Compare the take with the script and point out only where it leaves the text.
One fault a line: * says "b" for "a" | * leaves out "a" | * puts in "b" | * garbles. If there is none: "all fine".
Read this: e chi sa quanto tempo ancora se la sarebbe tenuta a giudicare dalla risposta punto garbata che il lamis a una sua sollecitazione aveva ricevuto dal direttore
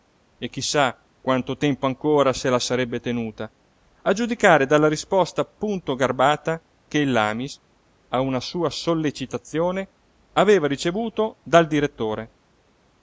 all fine